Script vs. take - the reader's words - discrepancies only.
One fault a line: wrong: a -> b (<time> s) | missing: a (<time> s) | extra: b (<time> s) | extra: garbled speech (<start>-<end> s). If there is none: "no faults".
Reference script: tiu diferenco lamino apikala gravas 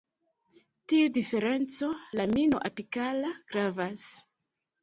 no faults